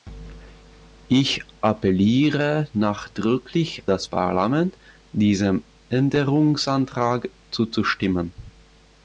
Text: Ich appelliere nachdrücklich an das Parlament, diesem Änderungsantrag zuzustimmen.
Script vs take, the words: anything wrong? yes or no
yes